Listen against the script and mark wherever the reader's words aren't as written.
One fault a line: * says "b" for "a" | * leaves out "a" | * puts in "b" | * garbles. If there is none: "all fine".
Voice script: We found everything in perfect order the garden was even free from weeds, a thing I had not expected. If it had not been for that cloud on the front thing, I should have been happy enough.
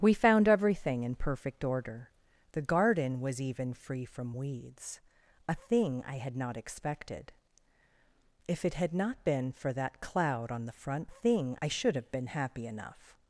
all fine